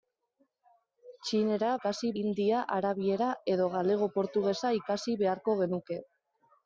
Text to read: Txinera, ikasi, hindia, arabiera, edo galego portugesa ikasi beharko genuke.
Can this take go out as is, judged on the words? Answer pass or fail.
pass